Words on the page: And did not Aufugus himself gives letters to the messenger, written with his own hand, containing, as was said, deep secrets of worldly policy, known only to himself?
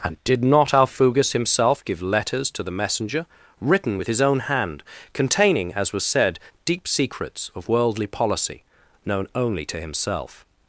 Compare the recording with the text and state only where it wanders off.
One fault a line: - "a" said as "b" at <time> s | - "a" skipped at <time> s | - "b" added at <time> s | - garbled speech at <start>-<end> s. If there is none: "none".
- "gives" said as "give" at 1.9 s